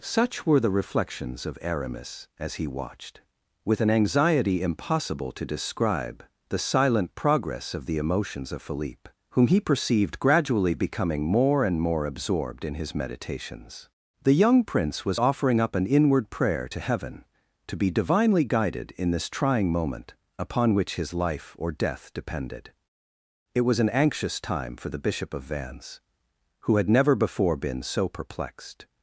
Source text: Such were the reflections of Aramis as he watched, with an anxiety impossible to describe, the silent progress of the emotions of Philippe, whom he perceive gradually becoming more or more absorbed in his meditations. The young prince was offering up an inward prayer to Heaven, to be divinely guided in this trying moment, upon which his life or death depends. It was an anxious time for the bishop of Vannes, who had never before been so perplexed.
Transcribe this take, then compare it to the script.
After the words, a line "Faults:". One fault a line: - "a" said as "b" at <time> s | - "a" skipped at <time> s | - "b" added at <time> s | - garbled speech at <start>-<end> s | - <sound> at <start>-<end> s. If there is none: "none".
Such were the reflections of Aramis as he watched, with an anxiety impossible to describe, the silent progress of the emotions of Philippe, whom he perceived gradually becoming more and more absorbed in his meditations. The young prince was offering up an inward prayer to Heaven, to be divinely guided in this trying moment, upon which his life or death depended. It was an anxious time for the bishop of Vannes, who had never before been so perplexed.
Faults:
- "perceive" said as "perceived" at 9.6 s
- "or" said as "and" at 11.6 s
- "depends" said as "depended" at 22.1 s